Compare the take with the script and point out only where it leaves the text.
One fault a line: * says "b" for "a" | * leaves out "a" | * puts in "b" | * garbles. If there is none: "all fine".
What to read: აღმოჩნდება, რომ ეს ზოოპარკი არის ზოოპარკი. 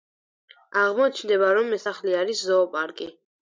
* says "სახლი" for "ზოოპარკი"